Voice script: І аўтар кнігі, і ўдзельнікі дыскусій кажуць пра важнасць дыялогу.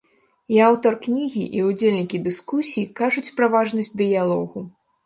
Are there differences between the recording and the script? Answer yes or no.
no